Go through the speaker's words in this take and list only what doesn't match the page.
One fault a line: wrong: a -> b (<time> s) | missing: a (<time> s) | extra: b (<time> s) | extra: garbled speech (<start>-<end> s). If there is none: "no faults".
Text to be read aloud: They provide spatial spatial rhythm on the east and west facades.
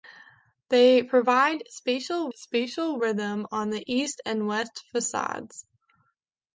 no faults